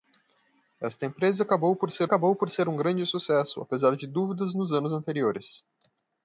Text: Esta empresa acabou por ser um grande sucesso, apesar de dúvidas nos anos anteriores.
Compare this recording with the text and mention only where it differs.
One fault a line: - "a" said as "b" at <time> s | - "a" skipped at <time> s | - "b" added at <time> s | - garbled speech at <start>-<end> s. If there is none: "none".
- "acabou por ser" added at 2.0 s